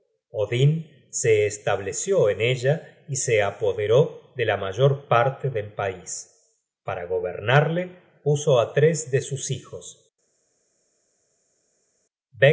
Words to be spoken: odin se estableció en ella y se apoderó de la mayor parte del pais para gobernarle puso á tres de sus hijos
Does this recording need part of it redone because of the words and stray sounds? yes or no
no